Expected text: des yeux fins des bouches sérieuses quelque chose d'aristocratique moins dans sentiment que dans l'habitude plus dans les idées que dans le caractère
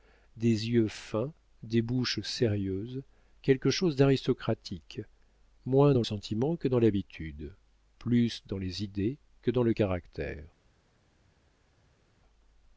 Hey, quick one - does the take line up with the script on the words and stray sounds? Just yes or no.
yes